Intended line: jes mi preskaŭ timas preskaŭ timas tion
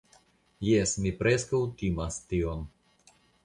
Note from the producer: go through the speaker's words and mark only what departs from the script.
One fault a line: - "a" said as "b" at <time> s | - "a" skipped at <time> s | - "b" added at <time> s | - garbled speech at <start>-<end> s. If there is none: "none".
- "preskaŭ timas" skipped at 2.2 s